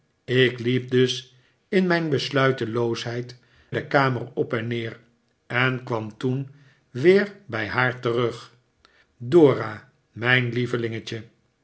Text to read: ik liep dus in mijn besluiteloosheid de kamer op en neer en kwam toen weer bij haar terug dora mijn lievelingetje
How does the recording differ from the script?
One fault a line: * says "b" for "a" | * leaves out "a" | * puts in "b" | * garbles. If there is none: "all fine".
all fine